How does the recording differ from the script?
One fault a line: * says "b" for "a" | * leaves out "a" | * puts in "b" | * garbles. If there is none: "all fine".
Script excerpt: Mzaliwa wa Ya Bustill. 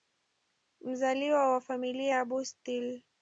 * puts in "Familia"